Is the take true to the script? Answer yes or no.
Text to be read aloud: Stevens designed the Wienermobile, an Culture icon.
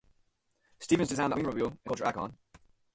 yes